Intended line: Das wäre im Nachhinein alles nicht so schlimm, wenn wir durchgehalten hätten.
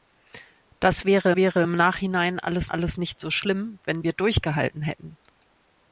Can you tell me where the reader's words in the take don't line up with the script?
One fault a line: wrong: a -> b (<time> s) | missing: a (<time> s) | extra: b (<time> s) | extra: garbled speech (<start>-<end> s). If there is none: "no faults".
extra: wäre (1.3 s)
extra: alles (2.7 s)